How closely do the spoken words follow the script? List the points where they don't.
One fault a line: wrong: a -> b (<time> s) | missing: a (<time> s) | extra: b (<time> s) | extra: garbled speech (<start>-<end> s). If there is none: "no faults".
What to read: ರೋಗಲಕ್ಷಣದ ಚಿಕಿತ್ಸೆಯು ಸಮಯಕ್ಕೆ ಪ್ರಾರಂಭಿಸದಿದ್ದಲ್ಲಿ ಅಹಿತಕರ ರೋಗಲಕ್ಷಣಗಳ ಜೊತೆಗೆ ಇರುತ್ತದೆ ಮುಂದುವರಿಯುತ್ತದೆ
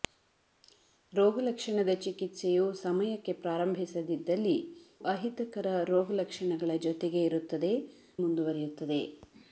no faults